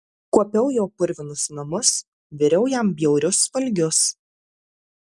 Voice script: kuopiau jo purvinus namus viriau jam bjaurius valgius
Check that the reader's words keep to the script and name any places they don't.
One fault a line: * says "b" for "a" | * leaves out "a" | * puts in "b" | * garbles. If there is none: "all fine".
all fine